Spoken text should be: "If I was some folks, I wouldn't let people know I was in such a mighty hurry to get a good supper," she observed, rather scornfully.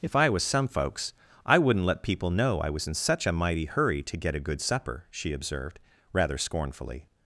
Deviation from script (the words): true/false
false